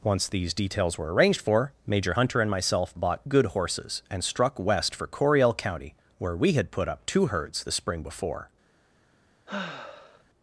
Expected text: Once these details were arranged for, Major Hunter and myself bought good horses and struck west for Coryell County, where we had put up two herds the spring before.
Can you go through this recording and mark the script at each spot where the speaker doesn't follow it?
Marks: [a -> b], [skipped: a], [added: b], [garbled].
Once these details were arranged for, Major Hunter and myself bought good horses and struck west for Coryell County, where we had put up two herds the spring before.